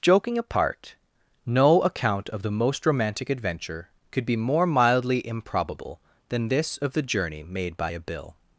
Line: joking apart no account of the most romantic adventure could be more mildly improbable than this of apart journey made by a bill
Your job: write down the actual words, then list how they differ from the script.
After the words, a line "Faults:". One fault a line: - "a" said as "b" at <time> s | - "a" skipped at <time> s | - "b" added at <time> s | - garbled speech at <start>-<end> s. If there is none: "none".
joking apart no account of the most romantic adventure could be more mildly improbable than this of the journey made by a bill
Faults:
- "apart" said as "the" at 6.9 s